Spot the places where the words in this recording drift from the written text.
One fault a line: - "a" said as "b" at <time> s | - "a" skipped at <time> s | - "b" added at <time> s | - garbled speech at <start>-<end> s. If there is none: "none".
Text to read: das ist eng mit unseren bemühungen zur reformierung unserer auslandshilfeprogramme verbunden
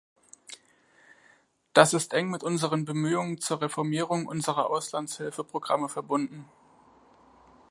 none